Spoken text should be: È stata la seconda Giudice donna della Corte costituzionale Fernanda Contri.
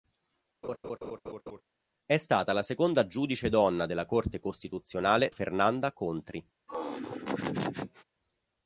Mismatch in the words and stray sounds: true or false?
true